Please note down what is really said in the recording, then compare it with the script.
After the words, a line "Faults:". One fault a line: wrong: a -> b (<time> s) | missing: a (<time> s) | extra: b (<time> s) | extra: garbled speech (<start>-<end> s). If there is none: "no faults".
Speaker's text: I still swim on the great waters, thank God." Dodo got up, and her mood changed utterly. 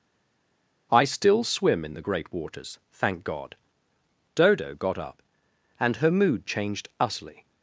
I still swim in the great waters, thank God." Dodo got up, and her mood changed utterly.
Faults:
wrong: on -> in (1.8 s)